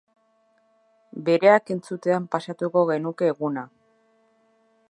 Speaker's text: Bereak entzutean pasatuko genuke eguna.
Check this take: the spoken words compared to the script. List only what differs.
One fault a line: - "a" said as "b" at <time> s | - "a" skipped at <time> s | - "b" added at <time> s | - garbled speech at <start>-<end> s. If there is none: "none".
none